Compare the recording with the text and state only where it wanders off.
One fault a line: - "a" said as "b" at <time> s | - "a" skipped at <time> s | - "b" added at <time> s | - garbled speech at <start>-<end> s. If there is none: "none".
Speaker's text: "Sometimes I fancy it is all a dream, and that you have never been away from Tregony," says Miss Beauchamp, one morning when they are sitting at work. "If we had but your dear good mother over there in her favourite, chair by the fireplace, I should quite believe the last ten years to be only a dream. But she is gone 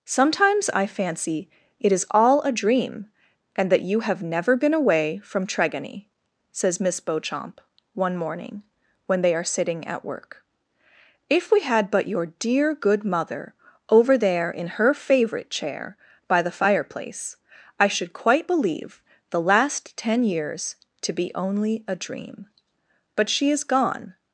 none